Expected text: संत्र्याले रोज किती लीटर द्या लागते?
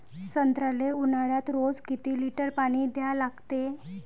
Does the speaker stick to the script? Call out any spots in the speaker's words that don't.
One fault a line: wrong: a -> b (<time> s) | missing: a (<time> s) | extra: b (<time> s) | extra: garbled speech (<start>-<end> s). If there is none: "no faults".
extra: ऊन्हाळ्यात (0.9 s)
extra: पानी (2.6 s)